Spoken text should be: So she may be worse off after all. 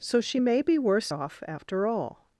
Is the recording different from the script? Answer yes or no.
no